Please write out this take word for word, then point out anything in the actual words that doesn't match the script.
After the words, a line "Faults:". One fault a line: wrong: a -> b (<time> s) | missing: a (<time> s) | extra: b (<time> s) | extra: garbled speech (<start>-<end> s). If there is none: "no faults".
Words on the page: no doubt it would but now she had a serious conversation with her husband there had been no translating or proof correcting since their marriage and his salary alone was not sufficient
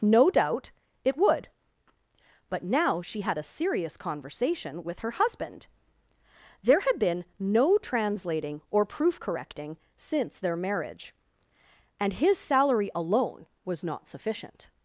no doubt it would but now she had a serious conversation with her husband there had been no translating or proof correcting since their marriage and his salary alone was not sufficient
Faults:
no faults